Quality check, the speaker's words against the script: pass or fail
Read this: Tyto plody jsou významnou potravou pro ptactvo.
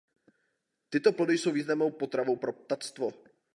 pass